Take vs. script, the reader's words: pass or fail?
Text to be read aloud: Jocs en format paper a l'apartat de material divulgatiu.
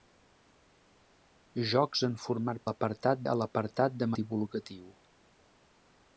fail